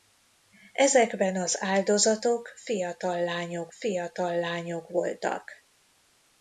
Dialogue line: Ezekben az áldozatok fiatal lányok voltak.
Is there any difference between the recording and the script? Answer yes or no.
yes